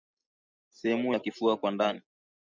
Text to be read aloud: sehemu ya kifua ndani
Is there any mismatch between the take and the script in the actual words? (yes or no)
yes